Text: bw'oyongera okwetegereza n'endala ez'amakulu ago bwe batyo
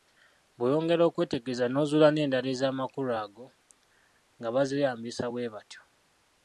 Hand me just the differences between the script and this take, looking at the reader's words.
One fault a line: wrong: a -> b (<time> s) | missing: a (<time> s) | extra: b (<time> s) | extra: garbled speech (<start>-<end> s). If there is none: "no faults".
extra: n'ozuula (1.7 s)
extra: nga bazeeyambisa (4.4 s)